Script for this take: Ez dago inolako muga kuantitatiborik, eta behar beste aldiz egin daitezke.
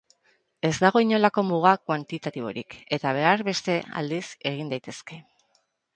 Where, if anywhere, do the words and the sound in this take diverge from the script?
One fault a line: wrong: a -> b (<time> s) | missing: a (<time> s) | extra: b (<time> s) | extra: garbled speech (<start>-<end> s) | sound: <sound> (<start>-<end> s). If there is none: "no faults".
no faults